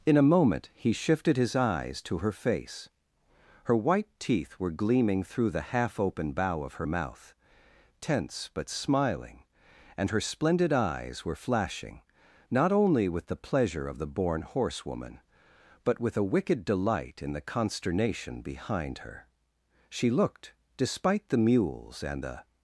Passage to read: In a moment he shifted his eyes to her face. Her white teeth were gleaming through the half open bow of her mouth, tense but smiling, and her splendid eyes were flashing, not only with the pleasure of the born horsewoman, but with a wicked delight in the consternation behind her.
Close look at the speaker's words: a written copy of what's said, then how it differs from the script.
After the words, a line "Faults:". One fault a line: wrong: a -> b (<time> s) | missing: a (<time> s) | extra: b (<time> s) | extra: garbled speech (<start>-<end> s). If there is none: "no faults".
In a moment he shifted his eyes to her face. Her white teeth were gleaming through the half open bow of her mouth, tense but smiling, and her splendid eyes were flashing, not only with the pleasure of the born horsewoman, but with a wicked delight in the consternation behind her. She looked, despite the mules and the
Faults:
extra: She looked despite the mules and the (19.9 s)